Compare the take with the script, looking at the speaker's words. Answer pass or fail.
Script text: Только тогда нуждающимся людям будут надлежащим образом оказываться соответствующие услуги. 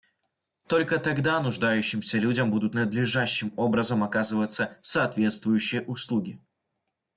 pass